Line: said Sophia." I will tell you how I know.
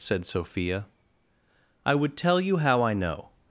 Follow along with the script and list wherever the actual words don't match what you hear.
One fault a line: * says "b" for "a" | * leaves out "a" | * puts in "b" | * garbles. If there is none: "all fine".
* says "would" for "will"